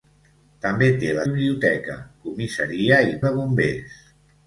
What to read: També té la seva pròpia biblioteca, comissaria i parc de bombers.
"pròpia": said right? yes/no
no